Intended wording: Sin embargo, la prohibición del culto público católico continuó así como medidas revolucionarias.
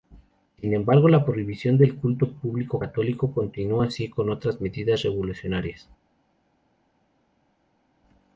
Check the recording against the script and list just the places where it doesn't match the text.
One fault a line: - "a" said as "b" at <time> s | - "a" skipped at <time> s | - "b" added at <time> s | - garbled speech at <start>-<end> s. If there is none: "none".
- "otras" added at 4.3 s